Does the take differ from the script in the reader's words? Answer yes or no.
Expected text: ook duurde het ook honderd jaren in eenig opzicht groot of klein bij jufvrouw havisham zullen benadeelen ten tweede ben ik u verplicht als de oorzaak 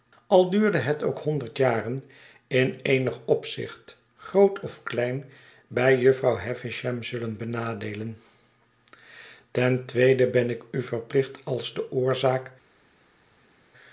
yes